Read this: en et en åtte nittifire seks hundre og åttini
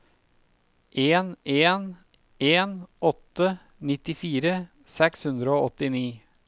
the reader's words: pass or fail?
fail